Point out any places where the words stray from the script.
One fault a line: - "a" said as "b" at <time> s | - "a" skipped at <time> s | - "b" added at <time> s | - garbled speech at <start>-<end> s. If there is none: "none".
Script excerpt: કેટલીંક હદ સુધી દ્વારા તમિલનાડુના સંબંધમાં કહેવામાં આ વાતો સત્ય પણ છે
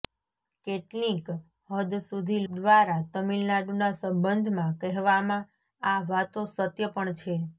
none